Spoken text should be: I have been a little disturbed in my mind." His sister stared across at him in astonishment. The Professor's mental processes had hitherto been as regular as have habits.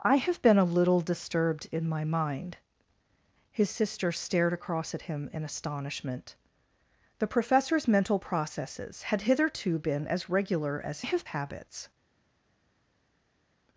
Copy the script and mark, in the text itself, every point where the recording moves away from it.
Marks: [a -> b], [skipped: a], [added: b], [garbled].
I have been a little disturbed in my mind." His sister stared across at him in astonishment. The Professor's mental processes had hitherto been as regular as have habits.